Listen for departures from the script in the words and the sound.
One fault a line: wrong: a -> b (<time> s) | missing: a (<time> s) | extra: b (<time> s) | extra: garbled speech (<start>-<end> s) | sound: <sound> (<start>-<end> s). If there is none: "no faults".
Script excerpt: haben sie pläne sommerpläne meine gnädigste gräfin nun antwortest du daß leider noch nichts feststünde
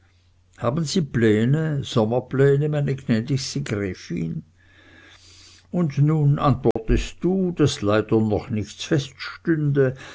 extra: und (5.7 s)
sound: dropout (6.7-6.8 s)